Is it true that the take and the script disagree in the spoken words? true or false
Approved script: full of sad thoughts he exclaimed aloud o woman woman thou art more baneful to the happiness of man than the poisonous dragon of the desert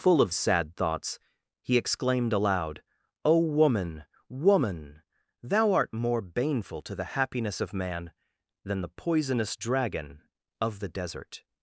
false